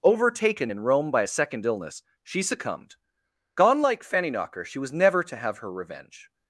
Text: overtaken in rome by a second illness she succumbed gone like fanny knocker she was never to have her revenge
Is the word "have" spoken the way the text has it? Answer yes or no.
yes